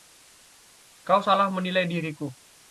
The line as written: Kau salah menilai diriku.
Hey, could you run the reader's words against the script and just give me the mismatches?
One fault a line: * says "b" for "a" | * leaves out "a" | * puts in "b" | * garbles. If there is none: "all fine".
all fine